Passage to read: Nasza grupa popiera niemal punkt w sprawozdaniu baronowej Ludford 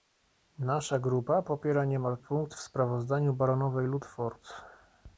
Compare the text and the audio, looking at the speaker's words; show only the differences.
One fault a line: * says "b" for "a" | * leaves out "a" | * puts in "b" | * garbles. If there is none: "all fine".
all fine